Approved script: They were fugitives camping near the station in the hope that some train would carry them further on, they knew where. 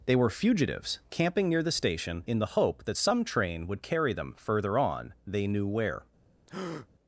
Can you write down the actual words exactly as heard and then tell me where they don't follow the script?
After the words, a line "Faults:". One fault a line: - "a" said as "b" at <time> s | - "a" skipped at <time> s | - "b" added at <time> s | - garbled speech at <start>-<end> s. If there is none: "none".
They were fugitives camping near the station in the hope that some train would carry them further on, they knew where.
Faults:
none